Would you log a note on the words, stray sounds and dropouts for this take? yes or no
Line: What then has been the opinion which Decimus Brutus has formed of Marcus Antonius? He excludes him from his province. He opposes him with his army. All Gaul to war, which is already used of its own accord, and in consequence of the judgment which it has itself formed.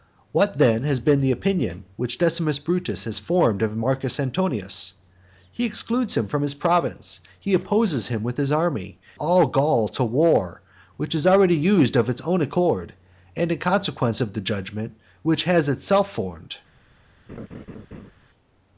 yes